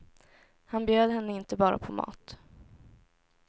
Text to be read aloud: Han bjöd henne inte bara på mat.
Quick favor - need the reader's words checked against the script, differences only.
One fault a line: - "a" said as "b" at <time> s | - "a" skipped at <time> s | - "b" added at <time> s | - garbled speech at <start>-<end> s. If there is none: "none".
none